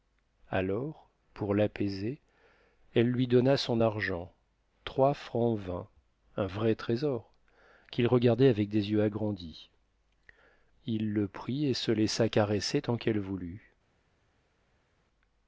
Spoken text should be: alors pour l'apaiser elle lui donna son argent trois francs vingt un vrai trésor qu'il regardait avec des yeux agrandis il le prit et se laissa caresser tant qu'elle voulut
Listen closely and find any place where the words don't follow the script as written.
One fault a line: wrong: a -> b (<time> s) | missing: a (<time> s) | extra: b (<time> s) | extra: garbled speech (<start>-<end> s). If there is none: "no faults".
no faults